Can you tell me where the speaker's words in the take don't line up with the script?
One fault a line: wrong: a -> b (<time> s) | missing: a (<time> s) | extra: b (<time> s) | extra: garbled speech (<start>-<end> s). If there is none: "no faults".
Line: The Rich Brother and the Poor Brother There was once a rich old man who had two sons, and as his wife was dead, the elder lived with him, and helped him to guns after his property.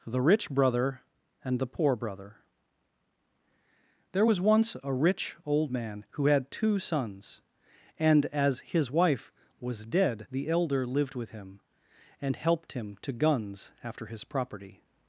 no faults